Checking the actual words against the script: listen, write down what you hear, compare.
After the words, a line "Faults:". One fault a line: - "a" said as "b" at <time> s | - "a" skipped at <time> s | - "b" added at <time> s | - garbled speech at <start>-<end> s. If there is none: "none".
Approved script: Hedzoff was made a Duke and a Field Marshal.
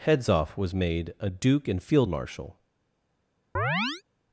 Hedzoff was made a Duke and Field Marshal.
Faults:
- "a" skipped at 1.8 s